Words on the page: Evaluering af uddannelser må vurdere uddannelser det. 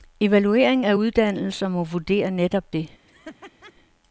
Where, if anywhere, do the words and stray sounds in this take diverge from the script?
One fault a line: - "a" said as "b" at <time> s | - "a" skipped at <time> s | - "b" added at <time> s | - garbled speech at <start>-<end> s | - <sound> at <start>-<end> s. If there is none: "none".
- "uddannelser" said as "netop" at 2.3 s
- laugh at 3.1-3.7 s